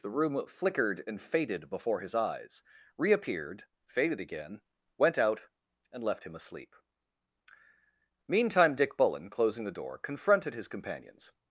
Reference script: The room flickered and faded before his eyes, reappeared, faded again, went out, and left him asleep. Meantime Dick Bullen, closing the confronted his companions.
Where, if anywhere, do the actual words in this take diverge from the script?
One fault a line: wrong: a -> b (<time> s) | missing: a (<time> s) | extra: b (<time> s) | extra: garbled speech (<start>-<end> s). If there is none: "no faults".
extra: door (9.7 s)